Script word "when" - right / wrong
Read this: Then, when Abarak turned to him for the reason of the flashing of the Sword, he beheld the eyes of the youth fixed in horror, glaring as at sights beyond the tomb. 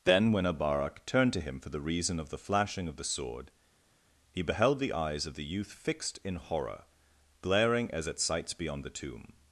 right